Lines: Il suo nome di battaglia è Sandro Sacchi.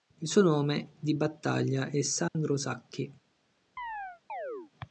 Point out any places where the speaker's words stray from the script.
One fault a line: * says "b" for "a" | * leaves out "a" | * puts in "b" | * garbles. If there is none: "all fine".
all fine